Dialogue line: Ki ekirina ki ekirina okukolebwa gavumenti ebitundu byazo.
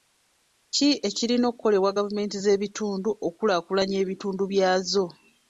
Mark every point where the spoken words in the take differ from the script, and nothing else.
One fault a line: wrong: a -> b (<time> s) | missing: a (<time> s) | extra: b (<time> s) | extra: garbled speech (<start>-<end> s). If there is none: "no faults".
wrong: ki ekirina okukolebwa gavumenti -> okukolebwa gavumenti z'ebitundu okukulaakulanya (1.5 s)